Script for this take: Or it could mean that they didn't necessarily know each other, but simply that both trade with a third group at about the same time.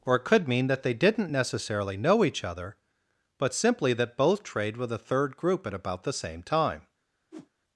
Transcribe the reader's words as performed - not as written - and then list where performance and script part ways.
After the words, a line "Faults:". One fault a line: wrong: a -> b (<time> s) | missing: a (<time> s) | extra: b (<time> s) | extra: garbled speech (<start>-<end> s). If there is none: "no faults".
Or it could mean that they didn't necessarily know each other, but simply that both trade with a third group at about the same time.
Faults:
no faults